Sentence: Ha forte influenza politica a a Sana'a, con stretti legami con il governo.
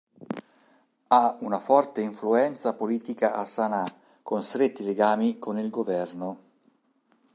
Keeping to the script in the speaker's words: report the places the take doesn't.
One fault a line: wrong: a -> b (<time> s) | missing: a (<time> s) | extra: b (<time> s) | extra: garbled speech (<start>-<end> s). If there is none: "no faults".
extra: una (1.4 s)
missing: a (3.5 s)